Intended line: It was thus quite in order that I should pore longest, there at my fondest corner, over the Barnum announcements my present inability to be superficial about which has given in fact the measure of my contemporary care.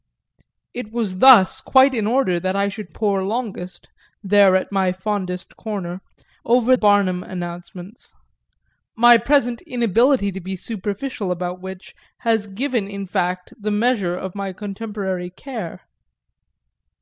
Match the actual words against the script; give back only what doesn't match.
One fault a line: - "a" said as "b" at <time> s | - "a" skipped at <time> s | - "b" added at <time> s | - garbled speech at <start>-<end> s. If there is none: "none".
- "the" skipped at 6.8 s